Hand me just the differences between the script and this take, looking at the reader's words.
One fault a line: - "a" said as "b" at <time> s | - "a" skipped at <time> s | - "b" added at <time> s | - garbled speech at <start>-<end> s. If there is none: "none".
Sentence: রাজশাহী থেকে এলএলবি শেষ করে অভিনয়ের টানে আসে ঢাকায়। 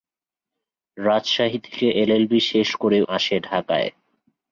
- "অভিনয়ের টানে" skipped at 3.0 s